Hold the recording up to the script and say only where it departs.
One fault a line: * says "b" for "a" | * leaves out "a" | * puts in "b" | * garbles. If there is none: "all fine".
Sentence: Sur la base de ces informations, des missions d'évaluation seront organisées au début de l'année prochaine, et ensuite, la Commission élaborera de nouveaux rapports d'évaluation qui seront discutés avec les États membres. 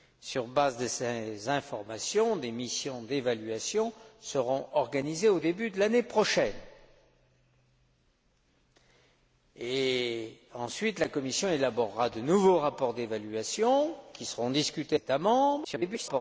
* leaves out "avec les"
* garbles